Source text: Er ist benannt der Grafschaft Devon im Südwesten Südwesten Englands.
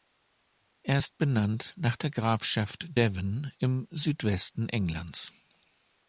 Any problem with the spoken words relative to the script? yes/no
yes